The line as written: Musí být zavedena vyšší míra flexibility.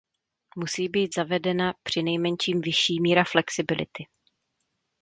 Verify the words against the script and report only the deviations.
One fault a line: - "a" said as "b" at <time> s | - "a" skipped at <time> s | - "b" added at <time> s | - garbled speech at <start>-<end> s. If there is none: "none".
- "přinejmenším" added at 1.8 s